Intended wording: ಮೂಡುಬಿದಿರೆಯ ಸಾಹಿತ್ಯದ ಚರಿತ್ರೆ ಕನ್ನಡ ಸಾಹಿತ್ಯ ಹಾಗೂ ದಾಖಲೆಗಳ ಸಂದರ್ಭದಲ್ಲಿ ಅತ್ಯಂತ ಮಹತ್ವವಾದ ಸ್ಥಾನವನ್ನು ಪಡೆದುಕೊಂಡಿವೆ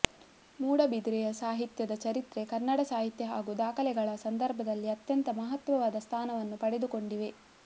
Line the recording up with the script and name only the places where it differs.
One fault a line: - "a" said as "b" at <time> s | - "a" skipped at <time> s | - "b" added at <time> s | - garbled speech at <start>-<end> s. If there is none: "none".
none